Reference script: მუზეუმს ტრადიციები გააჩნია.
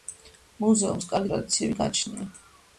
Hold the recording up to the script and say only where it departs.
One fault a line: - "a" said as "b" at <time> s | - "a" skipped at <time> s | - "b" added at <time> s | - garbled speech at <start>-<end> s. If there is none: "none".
- "კარგი" added at 1.1 s